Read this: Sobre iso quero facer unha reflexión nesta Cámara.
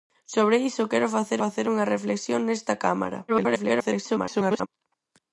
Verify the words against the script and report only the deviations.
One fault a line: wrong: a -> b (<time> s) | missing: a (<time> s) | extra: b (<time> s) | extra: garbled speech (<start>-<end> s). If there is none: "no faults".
extra: facer (1.4 s)
extra: garbled speech (3.3-4.7 s)